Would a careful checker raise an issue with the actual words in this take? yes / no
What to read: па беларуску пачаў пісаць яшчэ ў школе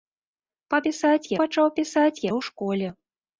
yes